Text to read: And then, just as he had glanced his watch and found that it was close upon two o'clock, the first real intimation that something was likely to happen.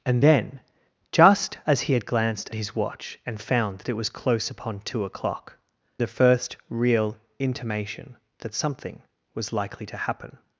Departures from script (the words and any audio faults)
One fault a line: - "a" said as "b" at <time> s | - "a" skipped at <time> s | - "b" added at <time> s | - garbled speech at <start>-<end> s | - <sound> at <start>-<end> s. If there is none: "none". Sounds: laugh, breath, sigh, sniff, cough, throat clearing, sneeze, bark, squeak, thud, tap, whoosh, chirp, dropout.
none